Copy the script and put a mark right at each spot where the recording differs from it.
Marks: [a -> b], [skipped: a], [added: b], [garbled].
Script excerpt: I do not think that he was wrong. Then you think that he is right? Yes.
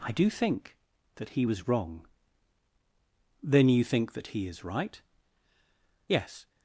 I do [skipped: not] think that he was wrong. Then you think that he is right? Yes.